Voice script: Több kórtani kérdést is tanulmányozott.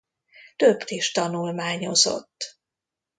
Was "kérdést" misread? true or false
true